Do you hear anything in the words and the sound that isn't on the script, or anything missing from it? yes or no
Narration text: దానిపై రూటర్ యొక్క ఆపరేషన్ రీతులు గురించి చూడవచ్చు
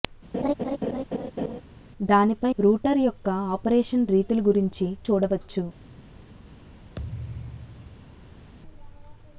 yes